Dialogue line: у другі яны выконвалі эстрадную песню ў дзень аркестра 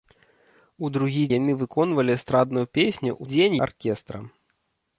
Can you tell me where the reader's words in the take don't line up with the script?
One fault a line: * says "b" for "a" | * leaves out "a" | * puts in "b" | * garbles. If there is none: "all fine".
all fine